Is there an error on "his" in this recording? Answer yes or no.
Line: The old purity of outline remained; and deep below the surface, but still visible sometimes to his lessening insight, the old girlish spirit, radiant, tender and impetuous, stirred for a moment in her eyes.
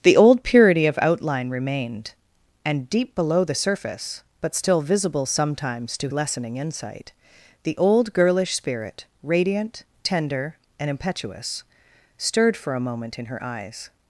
yes